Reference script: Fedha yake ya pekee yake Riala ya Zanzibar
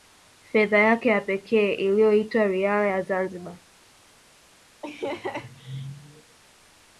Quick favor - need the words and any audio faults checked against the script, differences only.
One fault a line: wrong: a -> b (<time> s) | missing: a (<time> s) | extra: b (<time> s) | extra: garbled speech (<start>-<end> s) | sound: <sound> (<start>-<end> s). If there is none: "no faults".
wrong: yake -> iliyoitwa (1.7 s)
sound: laugh (4.8-6.4 s)